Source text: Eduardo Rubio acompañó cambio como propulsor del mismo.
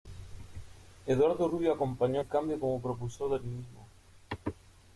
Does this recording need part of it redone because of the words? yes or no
yes